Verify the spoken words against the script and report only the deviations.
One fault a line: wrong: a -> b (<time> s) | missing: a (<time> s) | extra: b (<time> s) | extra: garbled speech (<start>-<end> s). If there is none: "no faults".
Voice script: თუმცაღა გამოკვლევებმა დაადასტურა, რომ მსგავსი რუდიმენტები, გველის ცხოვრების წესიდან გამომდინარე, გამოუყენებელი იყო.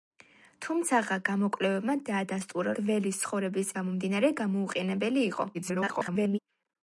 missing: რომ მსგავსი რუდიმენტები (2.7 s)
missing: წესიდან (3.7 s)
extra: garbled speech (5.5-6.4 s)